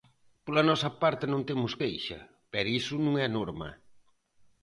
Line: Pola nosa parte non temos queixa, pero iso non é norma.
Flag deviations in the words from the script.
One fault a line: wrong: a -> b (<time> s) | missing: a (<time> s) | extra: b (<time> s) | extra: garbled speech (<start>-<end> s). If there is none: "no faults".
no faults